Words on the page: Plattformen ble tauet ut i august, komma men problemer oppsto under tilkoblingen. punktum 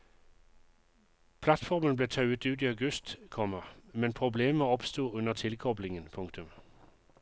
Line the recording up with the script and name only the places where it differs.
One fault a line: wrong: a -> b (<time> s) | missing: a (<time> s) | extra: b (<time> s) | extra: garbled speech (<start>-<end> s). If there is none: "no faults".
no faults